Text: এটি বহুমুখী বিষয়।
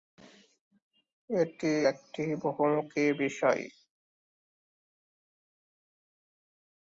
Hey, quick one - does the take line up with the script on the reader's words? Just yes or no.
no